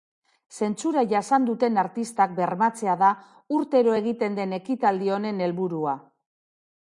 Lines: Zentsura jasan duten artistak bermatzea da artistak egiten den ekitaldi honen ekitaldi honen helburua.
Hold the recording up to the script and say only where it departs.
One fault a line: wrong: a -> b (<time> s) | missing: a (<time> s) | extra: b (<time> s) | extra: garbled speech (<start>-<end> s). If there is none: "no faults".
wrong: artistak -> urtero (3.6 s)
missing: ekitaldi honen (5.4 s)